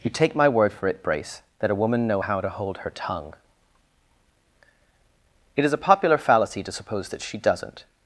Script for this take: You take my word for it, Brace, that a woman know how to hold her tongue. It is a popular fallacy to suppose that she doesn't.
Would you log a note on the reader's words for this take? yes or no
no